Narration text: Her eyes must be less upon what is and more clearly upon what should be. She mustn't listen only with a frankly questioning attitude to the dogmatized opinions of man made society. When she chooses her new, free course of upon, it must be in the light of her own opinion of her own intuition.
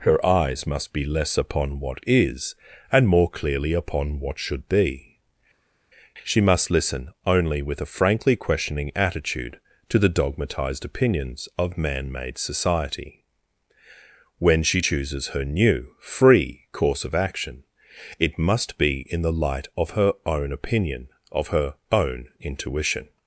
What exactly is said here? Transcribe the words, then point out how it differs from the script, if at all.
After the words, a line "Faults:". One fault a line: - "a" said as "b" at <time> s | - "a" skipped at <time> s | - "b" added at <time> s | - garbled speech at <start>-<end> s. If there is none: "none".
Her eyes must be less upon what is and more clearly upon what should be. She must listen only with a frankly questioning attitude to the dogmatized opinions of man made society. When she chooses her new, free course of action, it must be in the light of her own opinion of her own intuition.
Faults:
- "mustn't" said as "must" at 6.4 s
- "upon" said as "action" at 17.2 s